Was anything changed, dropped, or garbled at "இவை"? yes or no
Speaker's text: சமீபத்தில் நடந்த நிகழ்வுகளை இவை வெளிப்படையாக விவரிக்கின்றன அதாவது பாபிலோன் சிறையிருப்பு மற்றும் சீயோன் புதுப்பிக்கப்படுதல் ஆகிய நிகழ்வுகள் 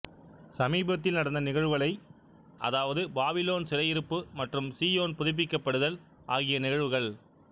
yes